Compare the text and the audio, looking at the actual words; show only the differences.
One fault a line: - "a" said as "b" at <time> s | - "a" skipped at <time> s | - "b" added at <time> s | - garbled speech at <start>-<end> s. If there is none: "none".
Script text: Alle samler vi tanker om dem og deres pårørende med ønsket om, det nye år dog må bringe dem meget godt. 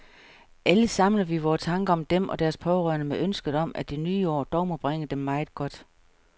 - "vore" added at 1.4 s
- "at" added at 3.8 s